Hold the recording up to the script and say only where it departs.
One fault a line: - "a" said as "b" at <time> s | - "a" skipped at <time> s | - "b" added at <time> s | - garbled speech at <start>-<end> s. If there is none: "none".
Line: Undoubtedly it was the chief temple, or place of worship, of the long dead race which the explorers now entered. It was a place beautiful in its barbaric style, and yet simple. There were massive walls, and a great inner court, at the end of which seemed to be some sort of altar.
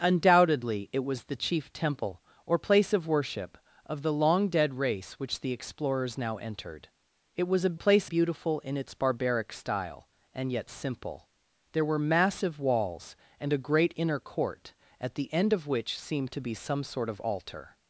none